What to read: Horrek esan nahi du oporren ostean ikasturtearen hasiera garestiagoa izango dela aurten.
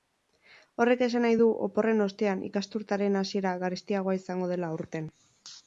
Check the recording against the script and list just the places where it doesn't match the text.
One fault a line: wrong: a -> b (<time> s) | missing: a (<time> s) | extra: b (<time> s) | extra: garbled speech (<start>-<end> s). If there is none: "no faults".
no faults